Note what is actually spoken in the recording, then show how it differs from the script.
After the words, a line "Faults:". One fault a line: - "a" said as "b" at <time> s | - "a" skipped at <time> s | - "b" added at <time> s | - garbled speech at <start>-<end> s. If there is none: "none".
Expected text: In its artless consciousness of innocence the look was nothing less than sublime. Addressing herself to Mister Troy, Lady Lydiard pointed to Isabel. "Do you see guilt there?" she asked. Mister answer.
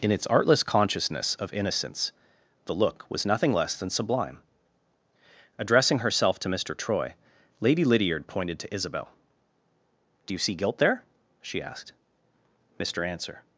In its artless consciousness of innocence the look was nothing less than sublime. Addressing herself to Mister Troy, Lady Lydiard pointed to Isabel. "Do you see guilt there?" she asked. Mister answer.
Faults:
none